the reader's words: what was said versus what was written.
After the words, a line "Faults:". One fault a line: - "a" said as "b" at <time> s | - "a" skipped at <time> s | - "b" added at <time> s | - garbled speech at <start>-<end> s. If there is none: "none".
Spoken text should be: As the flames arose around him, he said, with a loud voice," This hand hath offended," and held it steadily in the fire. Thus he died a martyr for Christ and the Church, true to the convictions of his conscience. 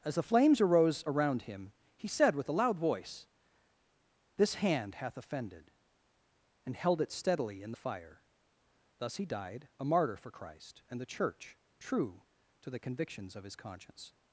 As the flames arose around him, he said, with a loud voice," This hand hath offended," and held it steadily in the fire. Thus he died a martyr for Christ and the Church, true to the convictions of his conscience.
Faults:
none